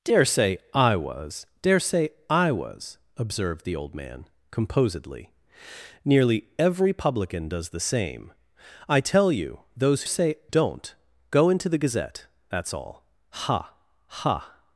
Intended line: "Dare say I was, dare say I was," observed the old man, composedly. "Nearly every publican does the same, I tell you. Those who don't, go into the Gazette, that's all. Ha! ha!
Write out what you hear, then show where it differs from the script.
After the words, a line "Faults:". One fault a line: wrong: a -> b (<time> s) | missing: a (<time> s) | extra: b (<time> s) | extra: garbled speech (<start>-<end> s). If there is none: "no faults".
"Dare say I was, dare say I was," observed the old man, composedly. "Nearly every publican does the same, I tell you. Those say don't, go into the Gazette, that's all. Ha! ha!
Faults:
wrong: who -> say (10.0 s)